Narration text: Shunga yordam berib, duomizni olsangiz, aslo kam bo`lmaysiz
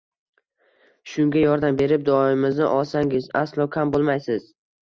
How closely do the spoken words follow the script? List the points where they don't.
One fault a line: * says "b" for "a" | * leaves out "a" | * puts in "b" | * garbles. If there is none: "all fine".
all fine